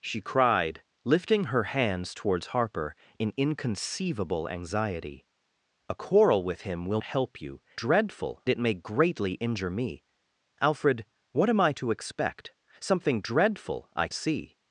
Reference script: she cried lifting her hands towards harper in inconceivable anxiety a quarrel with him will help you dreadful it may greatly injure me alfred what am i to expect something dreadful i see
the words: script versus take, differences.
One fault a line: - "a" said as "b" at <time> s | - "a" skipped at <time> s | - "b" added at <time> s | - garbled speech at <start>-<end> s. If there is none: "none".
none